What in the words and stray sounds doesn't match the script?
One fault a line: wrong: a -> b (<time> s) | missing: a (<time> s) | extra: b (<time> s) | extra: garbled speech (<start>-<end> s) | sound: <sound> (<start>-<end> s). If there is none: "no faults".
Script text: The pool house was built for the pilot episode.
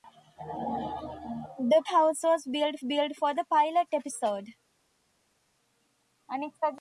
missing: pool (1.8 s)
extra: built (2.8 s)